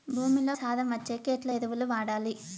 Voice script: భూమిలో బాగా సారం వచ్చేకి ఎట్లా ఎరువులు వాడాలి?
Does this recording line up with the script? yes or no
no